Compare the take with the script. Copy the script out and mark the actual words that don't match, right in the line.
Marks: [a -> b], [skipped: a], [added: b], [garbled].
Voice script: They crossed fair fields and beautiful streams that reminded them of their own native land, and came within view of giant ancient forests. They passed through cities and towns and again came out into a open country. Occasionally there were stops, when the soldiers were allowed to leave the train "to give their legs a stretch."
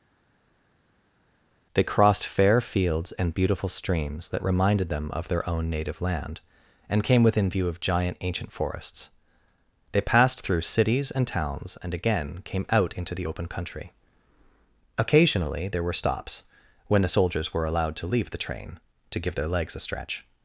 They crossed fair fields and beautiful streams that reminded them of their own native land, and came within view of giant ancient forests. They passed through cities and towns and again came out into [a -> the] open country. Occasionally there were stops, when the soldiers were allowed to leave the train "to give their legs a stretch."